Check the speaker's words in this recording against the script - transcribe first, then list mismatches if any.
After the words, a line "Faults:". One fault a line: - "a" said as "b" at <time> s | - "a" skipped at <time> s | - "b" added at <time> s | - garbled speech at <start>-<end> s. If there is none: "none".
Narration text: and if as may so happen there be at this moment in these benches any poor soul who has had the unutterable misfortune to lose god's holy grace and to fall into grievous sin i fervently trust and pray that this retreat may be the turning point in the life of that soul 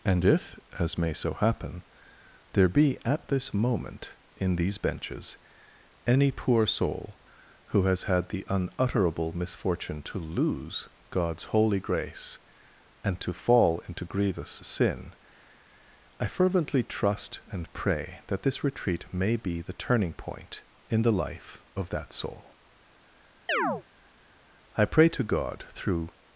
and if as may so happen there be at this moment in these benches any poor soul who has had the unutterable misfortune to lose god's holy grace and to fall into grievous sin i fervently trust and pray that this retreat may be the turning point in the life of that soul i pray to god through
Faults:
- "i pray to god through" added at 24.8 s